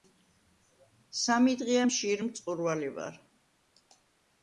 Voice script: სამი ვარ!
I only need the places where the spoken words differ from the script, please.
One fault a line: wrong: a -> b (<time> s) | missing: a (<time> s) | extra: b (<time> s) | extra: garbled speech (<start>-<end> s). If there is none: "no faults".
extra: დღეა მშიერ მწყურვალი (1.6 s)